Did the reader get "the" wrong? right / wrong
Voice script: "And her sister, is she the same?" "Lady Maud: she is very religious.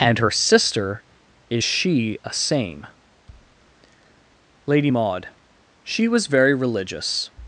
wrong